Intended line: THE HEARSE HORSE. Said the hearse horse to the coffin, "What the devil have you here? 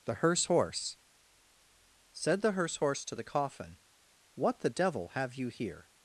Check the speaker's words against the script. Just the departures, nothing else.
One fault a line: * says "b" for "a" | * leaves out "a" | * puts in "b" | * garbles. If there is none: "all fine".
all fine